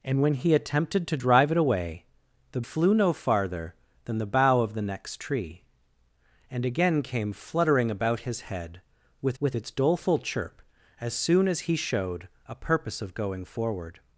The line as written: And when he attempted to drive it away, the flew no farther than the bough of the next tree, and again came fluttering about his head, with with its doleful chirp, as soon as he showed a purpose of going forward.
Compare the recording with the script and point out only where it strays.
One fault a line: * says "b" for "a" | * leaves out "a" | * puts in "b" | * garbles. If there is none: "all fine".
all fine